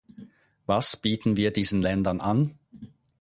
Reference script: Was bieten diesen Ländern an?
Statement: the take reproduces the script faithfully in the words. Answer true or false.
false